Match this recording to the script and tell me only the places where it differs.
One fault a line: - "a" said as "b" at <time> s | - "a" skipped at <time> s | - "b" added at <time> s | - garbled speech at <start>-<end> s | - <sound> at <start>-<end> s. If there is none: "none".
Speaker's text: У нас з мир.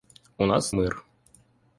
none